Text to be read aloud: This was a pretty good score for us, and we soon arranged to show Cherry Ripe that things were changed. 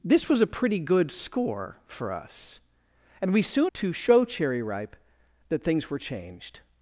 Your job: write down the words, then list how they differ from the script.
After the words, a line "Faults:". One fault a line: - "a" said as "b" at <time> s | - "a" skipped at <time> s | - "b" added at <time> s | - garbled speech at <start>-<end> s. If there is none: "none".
This was a pretty good score for us, and we soon to show Cherry Ripe that things were changed.
Faults:
- "arranged" skipped at 3.7 s